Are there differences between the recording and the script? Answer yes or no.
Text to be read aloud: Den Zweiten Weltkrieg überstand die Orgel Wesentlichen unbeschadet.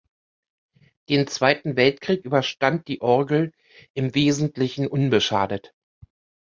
yes